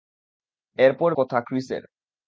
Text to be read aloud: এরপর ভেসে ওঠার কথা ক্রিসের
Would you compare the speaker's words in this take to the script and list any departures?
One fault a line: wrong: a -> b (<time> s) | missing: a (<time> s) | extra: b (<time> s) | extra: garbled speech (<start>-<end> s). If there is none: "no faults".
missing: ভেসে ওঠার (1.1 s)